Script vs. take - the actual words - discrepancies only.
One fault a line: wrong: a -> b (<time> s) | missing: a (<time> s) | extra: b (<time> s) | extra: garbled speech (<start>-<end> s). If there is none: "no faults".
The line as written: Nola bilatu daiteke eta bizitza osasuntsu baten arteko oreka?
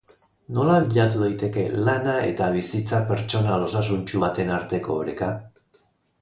extra: lana (1.9 s)
extra: pertsonal (3.1 s)